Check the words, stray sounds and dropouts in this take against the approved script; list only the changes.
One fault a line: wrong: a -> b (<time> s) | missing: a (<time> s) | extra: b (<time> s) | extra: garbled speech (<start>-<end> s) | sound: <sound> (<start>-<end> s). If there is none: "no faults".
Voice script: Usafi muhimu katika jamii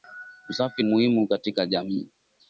no faults